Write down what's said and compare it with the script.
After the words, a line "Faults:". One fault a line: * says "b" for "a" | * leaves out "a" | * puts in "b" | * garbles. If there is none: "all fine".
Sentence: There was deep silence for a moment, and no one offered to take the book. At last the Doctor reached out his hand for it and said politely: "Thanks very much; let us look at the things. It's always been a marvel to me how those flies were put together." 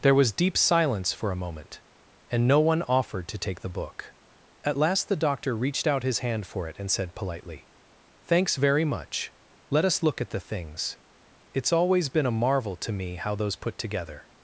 There was deep silence for a moment, and no one offered to take the book. At last the Doctor reached out his hand for it and said politely: "Thanks very much; let us look at the things. It's always been a marvel to me how those put together."
Faults:
* leaves out "flies were"